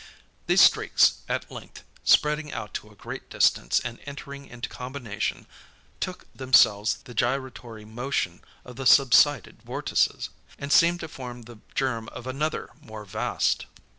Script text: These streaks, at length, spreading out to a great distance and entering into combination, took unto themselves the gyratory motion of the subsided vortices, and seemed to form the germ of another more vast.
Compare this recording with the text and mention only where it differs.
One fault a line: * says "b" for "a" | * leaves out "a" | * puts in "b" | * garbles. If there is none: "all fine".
* leaves out "unto"